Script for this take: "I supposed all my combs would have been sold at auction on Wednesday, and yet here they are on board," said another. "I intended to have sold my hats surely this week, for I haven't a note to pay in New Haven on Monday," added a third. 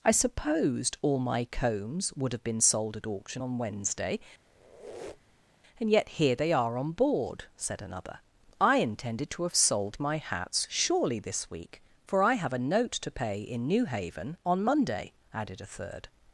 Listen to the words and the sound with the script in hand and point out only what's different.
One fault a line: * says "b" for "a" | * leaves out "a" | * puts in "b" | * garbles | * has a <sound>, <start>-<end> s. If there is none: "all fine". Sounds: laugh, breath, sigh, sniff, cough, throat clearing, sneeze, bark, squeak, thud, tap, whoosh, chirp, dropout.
* has a squeak, 4.4-5.6 s
* says "have" for "haven't"